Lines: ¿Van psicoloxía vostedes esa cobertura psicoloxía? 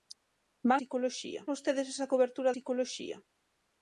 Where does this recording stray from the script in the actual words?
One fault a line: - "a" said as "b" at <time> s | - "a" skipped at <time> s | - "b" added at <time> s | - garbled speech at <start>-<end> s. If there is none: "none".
none